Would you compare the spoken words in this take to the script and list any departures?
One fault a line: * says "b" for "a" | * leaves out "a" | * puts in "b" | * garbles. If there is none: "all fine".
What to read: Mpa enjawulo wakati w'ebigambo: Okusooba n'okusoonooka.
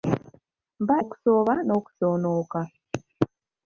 * leaves out "enjawulo wakati w'ebigambo"